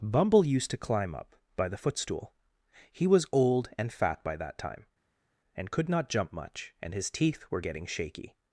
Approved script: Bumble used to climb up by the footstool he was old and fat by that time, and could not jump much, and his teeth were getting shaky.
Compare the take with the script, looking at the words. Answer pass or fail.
pass